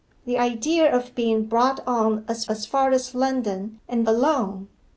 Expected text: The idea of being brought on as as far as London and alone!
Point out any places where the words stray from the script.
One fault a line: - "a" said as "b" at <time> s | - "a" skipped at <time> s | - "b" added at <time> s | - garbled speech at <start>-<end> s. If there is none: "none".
none